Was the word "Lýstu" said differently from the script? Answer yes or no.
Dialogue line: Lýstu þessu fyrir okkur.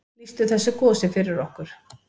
no